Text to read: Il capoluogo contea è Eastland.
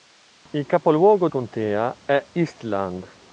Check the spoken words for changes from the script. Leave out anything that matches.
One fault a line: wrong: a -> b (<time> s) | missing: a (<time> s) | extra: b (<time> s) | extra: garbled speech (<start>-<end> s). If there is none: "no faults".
no faults